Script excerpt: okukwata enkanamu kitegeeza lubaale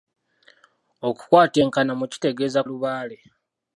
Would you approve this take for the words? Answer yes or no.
yes